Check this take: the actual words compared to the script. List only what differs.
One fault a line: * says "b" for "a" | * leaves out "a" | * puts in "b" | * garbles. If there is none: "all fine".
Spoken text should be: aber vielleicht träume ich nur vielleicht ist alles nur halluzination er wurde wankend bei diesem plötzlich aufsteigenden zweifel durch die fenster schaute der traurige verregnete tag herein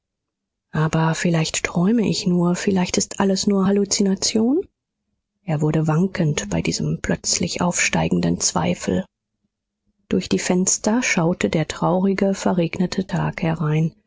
all fine